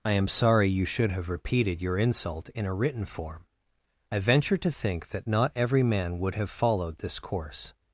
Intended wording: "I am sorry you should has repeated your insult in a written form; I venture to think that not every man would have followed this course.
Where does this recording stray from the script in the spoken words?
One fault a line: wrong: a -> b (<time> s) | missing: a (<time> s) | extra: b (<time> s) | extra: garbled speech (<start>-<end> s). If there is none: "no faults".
wrong: has -> have (1.1 s)